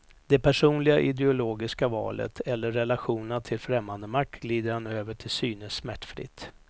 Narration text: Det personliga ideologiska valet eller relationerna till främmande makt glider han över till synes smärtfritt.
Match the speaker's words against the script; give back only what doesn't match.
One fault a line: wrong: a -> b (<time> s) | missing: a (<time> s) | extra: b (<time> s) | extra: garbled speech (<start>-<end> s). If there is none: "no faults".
no faults